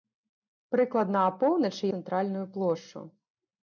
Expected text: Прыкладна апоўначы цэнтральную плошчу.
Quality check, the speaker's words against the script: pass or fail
pass